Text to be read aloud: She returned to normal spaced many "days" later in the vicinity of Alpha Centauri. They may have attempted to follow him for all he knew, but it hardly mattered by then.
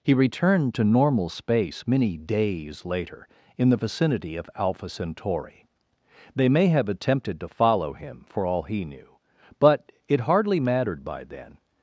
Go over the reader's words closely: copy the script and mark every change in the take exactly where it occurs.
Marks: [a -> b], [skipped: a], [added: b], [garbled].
[She -> He] returned to normal [spaced -> space] many "days" later in the vicinity of Alpha Centauri. They may have attempted to follow him for all he knew, but it hardly mattered by then.